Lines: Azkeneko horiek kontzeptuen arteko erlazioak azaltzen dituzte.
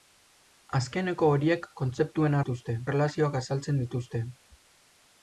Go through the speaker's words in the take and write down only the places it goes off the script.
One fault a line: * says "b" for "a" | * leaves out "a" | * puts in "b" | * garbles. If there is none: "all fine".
* says "dituzte" for "arteko"